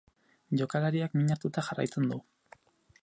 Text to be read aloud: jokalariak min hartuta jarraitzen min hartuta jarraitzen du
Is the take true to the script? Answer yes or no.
no